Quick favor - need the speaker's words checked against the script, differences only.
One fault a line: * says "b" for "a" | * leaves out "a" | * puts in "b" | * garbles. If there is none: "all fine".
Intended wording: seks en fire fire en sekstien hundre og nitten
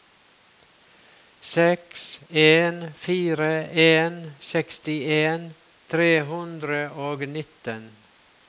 * leaves out "fire"
* puts in "tre"